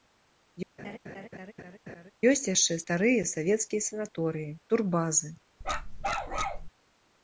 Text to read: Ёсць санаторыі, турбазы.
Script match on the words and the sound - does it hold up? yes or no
no